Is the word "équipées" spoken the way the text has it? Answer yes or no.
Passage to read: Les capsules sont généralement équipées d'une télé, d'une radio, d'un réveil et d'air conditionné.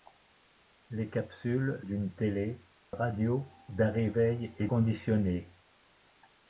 no